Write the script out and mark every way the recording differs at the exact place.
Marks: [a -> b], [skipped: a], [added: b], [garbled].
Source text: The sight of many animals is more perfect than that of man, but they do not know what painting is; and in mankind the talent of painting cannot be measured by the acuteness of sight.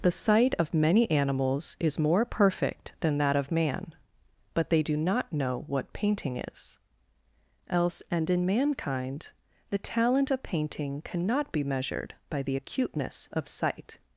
The sight of many animals is more perfect than that of man, but they do not know what painting is; [added: else] and in mankind the talent of painting cannot be measured by the acuteness of sight.